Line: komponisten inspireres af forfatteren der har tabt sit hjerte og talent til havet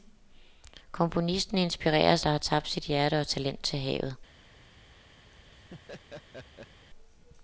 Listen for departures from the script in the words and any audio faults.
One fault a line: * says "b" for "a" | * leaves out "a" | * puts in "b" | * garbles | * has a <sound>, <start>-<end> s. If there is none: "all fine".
* leaves out "af forfatteren"
* has a laugh, 5.3-6.9 s